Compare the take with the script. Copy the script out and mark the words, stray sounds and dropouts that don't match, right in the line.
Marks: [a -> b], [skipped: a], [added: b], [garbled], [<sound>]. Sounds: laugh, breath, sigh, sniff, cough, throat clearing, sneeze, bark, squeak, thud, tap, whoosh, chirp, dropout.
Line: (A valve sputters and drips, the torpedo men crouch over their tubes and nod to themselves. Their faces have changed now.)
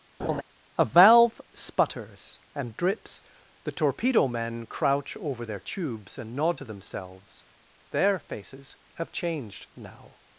[laugh] (A valve sputters and drips, the torpedo men crouch over their tubes and nod to themselves. Their faces have changed now.)